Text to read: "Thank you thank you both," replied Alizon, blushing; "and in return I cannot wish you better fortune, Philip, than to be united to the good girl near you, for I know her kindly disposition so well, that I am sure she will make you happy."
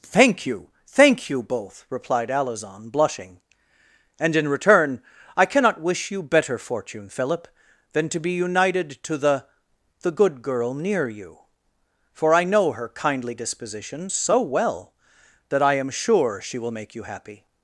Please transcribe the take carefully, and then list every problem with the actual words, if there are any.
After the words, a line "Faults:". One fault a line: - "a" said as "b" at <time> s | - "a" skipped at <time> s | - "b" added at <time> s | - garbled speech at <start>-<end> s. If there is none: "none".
"Thank you thank you both," replied Alizon, blushing; "and in return I cannot wish you better fortune, Philip, than to be united to the the good girl near you, for I know her kindly disposition so well, that I am sure she will make you happy."
Faults:
- "the" added at 10.0 s